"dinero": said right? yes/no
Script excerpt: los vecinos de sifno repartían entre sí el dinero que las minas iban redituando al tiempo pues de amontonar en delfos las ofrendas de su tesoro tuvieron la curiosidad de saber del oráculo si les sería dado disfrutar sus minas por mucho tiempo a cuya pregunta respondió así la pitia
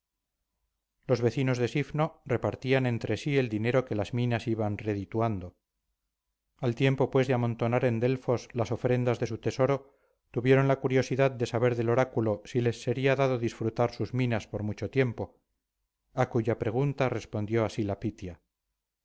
yes